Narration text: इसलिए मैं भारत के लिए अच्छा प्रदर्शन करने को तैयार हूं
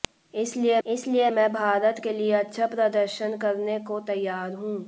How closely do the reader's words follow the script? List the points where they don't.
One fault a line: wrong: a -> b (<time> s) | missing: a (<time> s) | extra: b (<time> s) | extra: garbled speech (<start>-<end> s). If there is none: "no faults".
extra: इसलिए (0.8 s)